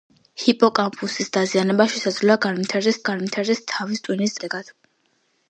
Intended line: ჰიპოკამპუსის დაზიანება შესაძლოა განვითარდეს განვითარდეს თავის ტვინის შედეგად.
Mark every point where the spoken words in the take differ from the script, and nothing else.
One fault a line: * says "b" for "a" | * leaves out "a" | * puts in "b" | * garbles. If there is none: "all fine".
all fine